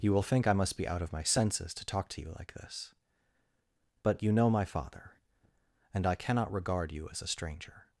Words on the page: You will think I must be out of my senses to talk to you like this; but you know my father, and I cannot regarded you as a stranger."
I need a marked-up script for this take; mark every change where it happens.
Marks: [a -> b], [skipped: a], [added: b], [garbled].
You will think I must be out of my senses to talk to you like this; but you know my father, and I cannot [regarded -> regard] you as a stranger."